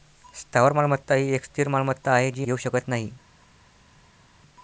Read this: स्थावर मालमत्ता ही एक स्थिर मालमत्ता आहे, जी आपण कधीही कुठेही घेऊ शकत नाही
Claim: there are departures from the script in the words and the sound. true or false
true